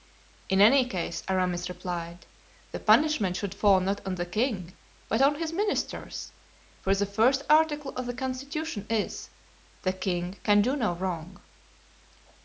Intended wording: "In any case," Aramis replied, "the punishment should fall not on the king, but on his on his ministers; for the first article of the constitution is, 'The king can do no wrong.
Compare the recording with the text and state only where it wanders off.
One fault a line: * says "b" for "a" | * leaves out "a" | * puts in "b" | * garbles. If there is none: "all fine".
* leaves out "on his"